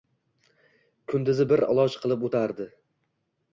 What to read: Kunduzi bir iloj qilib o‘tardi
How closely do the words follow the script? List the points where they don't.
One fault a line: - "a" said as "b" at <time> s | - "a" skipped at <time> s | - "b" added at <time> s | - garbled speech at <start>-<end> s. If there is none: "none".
none